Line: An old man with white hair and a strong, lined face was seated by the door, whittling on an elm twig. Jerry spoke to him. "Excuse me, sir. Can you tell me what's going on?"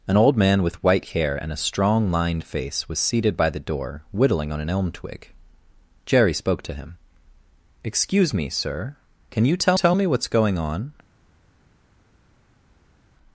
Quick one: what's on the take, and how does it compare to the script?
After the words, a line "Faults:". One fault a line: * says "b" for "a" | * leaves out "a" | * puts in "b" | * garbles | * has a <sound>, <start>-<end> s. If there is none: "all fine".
An old man with white hair and a strong, lined face was seated by the door, whittling on an elm twig. Jerry spoke to him. "Excuse me, sir. Can you tell tell me what's going on?"
Faults:
* puts in "tell"